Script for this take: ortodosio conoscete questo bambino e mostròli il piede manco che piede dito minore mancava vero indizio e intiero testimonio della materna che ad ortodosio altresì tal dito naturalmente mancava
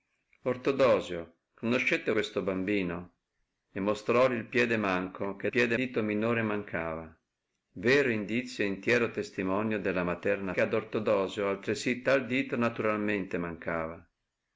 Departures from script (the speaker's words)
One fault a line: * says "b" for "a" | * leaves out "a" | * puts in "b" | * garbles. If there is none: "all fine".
all fine